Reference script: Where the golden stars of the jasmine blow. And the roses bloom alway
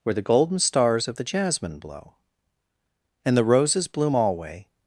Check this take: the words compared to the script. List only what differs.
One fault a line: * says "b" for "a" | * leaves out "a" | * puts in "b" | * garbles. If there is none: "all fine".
all fine